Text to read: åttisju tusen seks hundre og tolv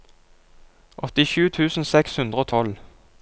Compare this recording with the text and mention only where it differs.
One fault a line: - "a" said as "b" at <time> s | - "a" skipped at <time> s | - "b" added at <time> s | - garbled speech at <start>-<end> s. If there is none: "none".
none